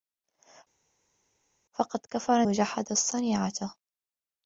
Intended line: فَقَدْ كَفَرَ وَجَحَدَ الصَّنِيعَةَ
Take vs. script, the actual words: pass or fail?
pass